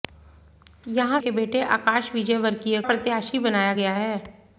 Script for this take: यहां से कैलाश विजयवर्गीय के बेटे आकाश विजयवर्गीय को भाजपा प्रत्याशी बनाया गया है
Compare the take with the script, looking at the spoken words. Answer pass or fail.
fail